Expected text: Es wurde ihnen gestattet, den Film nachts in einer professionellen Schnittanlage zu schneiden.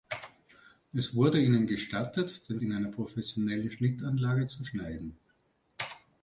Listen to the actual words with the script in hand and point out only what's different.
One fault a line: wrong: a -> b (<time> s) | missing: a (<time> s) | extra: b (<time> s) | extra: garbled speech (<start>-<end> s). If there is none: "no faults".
missing: Film nachts (2.6 s)